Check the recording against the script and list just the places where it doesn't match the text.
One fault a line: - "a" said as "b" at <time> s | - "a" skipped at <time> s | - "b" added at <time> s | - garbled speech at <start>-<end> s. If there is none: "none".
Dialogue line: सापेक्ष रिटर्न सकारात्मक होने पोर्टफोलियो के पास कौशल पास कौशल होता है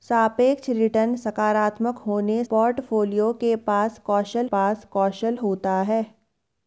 none